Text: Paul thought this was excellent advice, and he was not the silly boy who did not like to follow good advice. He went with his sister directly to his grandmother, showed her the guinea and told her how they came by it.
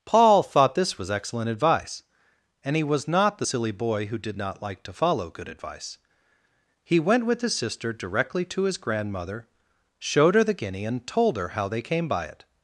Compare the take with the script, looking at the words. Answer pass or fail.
pass